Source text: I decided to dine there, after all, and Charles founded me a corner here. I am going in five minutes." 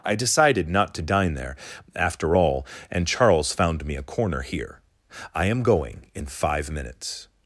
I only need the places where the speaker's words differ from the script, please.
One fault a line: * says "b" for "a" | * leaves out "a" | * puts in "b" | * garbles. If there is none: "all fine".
* puts in "not"
* says "found" for "founded"